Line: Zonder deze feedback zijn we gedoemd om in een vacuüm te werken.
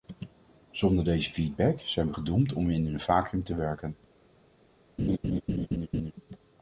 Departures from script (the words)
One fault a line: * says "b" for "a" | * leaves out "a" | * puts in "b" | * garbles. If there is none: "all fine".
all fine